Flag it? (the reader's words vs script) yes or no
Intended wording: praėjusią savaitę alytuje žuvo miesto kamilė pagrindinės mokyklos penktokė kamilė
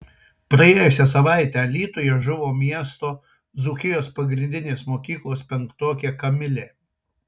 yes